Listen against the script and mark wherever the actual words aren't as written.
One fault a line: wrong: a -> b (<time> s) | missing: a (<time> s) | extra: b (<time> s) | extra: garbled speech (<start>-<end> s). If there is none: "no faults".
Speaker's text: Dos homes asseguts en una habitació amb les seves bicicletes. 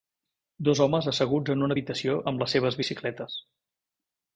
no faults